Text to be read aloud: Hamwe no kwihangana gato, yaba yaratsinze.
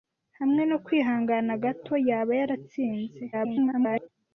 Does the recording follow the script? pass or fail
fail